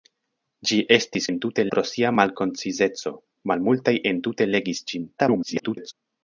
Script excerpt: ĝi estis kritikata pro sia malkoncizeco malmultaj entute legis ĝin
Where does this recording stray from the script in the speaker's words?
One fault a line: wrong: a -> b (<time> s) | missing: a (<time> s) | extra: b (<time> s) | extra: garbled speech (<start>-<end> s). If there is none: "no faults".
wrong: kritikata -> entute (1.3 s)
extra: garbled speech (5.2-5.9 s)